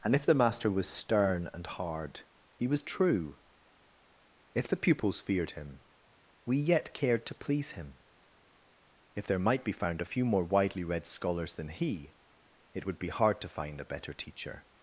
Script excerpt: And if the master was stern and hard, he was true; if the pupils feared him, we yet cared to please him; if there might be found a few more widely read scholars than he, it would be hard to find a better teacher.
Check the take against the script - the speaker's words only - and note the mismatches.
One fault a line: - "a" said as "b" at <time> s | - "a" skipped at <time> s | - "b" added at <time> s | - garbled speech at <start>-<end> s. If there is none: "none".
none